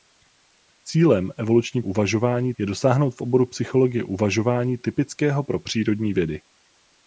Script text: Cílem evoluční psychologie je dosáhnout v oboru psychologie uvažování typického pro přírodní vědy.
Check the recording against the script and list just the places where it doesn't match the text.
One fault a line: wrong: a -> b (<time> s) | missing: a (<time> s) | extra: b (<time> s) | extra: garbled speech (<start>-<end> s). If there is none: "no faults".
wrong: psychologie -> uvažování (1.8 s)